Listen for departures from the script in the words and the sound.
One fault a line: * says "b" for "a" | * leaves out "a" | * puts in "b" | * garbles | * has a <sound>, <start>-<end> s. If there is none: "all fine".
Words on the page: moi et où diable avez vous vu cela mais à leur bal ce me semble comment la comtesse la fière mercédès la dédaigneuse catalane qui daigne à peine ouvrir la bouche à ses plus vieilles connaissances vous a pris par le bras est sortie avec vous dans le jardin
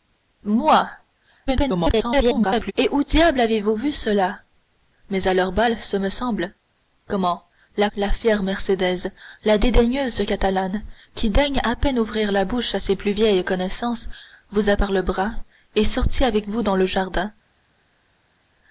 * garbles
* leaves out "comtesse"
* leaves out "pris"